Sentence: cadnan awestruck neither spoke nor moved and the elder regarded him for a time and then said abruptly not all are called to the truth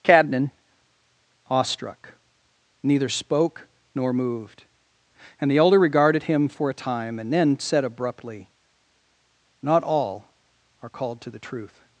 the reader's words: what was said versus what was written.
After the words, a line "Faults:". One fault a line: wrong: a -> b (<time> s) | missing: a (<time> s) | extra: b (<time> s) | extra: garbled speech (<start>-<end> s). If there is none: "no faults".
cadnan awestruck neither spoke nor moved and the elder regarded him for a time and then said abruptly not all are called to the truth
Faults:
no faults